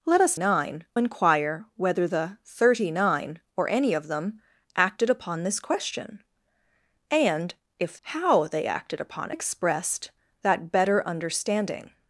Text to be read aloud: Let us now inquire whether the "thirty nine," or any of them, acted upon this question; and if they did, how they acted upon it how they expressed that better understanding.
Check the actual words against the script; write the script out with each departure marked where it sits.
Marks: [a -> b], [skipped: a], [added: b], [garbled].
Let us [now -> nine] inquire whether the "thirty nine," or any of them, acted upon this question; and if [skipped: they did,] how they acted upon [skipped: it how they] expressed that better understanding.